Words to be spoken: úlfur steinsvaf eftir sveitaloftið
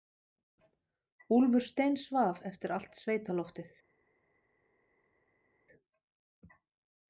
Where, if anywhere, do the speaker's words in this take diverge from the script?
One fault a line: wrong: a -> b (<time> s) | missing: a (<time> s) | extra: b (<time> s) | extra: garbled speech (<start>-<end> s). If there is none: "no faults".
extra: allt (2.7 s)